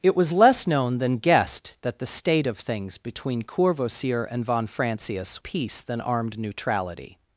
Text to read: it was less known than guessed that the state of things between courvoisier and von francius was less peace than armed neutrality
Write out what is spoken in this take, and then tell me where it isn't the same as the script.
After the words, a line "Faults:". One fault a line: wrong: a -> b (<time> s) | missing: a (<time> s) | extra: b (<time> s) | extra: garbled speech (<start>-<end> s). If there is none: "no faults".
it was less known than guessed that the state of things between courvoisier and von francius peace than armed neutrality
Faults:
missing: was less (5.4 s)